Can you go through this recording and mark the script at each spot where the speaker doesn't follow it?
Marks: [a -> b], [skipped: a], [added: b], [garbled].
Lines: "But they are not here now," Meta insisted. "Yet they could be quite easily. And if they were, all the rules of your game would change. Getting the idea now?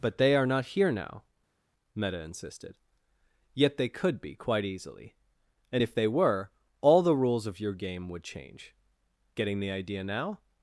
"But they are not here now," Meta insisted. "Yet they could be quite easily. And if they were, all the rules of your game would change. Getting the idea now?